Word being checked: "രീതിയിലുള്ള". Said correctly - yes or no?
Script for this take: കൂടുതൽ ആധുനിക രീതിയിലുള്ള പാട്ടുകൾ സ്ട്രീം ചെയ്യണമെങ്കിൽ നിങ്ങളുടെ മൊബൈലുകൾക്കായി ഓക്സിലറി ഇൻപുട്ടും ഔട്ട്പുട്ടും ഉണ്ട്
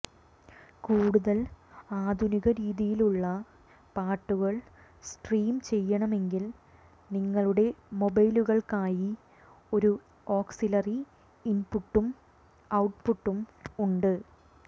yes